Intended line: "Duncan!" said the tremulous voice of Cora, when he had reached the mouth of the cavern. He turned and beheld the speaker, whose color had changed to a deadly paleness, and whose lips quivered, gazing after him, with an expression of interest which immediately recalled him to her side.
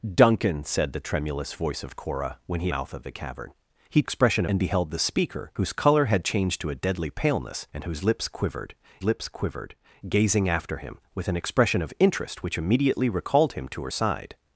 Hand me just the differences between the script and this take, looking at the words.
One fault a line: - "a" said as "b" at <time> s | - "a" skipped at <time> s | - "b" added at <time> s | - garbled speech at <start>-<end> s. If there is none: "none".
- "had reached the" skipped at 2.7 s
- "turned" said as "expression" at 4.0 s
- "lips quivered" added at 9.0 s